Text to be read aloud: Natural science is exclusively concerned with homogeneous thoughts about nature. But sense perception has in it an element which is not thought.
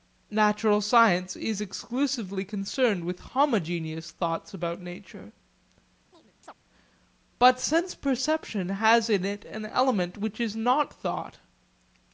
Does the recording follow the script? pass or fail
pass